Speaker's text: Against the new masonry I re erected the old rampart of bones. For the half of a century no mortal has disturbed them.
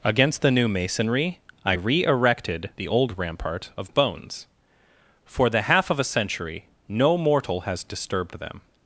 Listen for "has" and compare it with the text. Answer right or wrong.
right